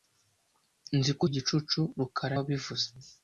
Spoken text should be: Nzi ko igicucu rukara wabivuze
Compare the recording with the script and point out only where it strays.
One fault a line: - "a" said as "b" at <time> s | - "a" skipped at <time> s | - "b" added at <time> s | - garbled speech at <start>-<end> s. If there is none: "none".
none